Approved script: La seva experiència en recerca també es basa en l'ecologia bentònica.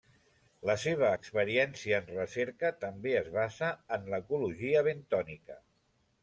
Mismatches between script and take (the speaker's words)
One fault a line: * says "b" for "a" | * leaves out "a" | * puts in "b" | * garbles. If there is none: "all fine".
all fine